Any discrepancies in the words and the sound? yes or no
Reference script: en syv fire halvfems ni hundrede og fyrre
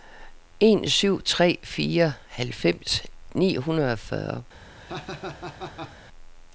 yes